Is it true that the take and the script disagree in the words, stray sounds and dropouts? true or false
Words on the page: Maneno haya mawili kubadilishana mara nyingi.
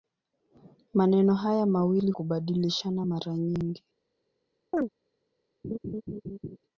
true